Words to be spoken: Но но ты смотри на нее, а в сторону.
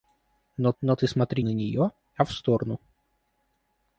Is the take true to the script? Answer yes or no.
yes